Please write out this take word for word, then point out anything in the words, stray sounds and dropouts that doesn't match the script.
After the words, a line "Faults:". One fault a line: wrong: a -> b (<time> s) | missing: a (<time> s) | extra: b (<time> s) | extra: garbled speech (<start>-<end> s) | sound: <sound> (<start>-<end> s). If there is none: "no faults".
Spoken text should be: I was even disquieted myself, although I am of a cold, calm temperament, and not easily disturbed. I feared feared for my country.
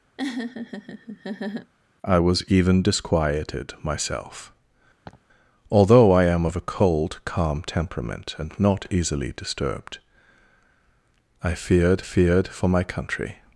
I was even disquieted myself, although I am of a cold, calm temperament, and not easily disturbed. I feared feared for my country.
Faults:
sound: laugh (0.2-1.7 s)
sound: laugh (5.0-5.2 s)